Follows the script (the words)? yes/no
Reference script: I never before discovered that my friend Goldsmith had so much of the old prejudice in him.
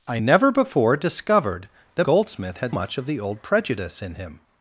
no